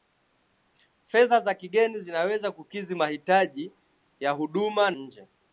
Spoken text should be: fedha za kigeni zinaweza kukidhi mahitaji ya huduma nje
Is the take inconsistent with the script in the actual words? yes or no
no